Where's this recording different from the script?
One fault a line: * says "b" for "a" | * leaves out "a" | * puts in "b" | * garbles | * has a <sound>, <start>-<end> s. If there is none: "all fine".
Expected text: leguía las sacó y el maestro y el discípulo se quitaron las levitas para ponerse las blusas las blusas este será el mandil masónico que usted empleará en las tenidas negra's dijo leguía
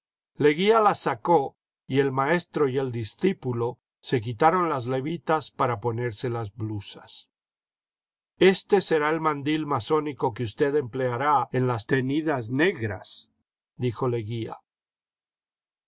* leaves out "las blusas"